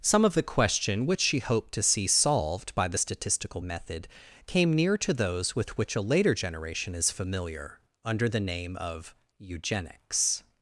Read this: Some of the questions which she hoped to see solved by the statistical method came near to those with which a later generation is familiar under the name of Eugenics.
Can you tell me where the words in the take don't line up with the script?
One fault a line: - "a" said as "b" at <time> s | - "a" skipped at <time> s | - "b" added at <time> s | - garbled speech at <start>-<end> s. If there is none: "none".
- "questions" said as "question" at 0.4 s